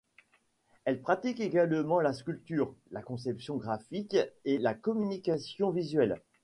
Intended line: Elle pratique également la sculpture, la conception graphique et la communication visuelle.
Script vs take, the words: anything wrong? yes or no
no